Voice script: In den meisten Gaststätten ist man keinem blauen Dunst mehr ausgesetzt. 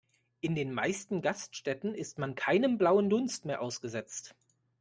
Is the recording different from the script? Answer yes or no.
no